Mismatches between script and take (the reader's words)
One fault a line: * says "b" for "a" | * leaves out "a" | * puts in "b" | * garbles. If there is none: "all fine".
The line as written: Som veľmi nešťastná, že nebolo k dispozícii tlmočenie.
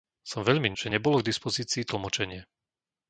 * leaves out "nešťastná"